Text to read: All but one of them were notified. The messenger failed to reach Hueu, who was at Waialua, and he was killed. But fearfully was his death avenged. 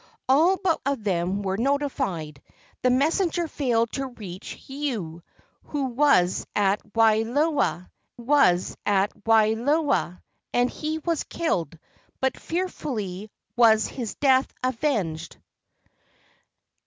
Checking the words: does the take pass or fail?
fail